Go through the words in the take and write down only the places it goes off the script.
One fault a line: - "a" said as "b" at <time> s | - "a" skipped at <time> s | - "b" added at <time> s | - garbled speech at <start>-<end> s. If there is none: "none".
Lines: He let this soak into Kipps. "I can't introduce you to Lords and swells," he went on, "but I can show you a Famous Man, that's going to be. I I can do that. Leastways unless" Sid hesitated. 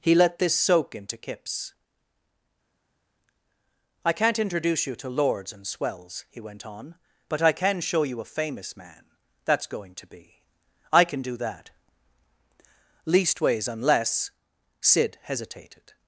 - "I" skipped at 11.0 s